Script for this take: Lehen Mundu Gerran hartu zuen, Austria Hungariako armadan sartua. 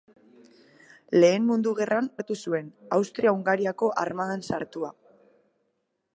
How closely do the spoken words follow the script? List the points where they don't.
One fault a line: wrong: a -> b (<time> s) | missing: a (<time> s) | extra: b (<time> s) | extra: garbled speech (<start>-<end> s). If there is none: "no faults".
no faults